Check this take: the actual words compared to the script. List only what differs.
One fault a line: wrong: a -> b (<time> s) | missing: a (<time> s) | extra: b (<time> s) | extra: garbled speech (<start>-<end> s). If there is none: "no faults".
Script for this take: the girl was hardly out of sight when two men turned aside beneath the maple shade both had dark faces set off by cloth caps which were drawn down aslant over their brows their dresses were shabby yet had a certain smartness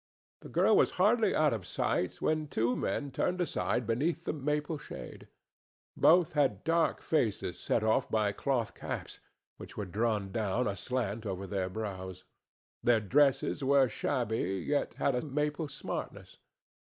wrong: certain -> maple (15.2 s)